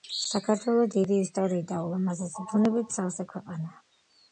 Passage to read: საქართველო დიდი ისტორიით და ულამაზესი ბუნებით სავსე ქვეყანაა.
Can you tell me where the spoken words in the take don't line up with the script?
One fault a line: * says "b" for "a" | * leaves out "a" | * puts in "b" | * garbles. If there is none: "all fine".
all fine